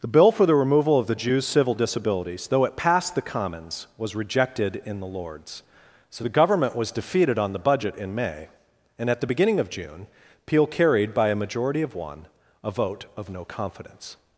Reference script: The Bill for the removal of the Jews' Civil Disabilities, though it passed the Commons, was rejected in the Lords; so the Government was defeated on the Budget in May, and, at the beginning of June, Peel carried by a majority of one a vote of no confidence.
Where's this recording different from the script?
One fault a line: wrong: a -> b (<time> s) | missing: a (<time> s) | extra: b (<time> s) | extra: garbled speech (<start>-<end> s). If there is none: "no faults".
no faults